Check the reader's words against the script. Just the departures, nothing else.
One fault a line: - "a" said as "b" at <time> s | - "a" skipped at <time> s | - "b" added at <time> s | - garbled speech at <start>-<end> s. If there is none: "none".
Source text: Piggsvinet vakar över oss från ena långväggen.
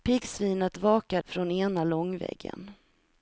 - "över oss" skipped at 1.2 s